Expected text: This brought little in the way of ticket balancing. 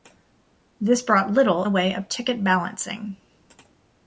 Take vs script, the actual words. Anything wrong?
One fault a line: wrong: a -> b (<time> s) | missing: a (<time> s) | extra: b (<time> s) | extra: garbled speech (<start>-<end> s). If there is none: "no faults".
missing: in (1.7 s)